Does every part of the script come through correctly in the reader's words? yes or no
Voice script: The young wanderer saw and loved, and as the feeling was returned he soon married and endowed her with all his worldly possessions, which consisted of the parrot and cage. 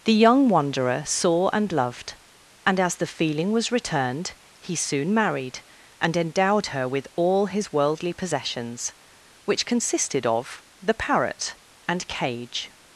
yes